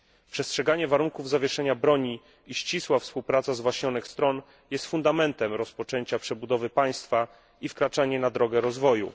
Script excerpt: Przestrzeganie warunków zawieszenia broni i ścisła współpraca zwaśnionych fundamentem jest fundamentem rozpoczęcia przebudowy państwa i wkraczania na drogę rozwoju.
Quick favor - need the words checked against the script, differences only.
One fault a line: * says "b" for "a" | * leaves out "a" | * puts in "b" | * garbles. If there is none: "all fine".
* says "stron" for "fundamentem"